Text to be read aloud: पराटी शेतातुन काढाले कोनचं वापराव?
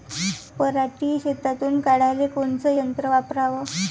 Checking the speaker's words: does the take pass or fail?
fail